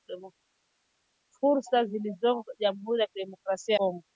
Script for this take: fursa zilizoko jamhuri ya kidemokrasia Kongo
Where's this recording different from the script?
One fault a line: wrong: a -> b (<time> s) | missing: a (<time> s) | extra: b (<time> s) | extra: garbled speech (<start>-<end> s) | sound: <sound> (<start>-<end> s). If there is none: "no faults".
no faults